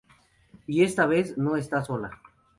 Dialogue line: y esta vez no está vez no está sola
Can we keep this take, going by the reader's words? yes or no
no